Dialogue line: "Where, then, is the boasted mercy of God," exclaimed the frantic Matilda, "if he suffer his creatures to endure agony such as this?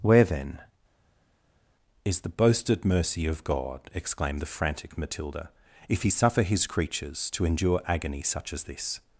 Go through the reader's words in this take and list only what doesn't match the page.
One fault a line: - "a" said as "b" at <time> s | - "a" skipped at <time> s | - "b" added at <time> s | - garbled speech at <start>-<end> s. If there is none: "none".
none